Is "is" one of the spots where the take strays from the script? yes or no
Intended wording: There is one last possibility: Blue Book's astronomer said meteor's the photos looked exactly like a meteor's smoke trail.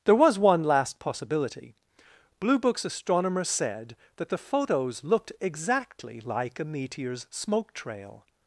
yes